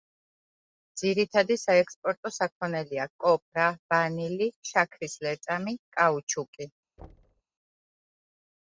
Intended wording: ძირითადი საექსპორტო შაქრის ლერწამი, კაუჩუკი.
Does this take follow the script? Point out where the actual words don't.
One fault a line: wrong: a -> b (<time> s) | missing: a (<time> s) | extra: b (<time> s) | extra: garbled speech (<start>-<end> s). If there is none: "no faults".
extra: საქონელია კოპრა ვანილი (2.4 s)